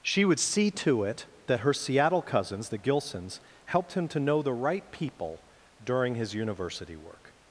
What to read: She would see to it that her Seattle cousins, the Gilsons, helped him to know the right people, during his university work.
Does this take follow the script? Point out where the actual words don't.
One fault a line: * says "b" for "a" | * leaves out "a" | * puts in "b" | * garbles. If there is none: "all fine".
all fine